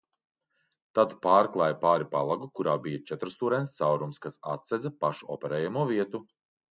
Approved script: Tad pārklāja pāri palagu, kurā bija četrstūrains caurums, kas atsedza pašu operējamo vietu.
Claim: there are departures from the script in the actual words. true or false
false